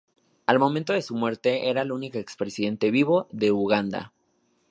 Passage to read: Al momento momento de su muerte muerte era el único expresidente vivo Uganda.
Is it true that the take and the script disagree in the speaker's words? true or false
true